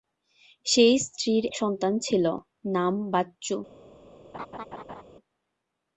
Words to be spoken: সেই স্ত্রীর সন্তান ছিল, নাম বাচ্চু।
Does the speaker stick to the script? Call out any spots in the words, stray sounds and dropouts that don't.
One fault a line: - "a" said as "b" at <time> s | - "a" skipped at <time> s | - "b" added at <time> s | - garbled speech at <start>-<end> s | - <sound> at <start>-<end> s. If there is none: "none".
- laugh at 4.3-5.0 s